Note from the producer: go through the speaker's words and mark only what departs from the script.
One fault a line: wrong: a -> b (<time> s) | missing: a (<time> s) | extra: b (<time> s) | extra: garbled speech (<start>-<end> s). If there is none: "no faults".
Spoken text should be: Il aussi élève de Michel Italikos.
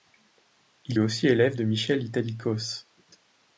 no faults